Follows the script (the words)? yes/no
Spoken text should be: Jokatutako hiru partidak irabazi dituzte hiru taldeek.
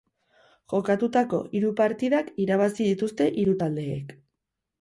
yes